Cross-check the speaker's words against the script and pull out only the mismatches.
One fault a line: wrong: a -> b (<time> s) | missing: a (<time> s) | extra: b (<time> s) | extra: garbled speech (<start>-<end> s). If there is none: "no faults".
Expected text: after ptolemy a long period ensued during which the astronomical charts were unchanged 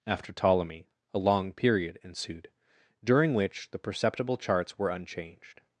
wrong: astronomical -> perceptible (3.8 s)